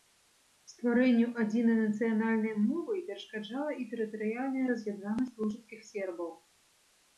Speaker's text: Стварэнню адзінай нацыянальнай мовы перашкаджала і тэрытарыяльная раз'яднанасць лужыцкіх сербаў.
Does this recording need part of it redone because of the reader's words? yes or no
no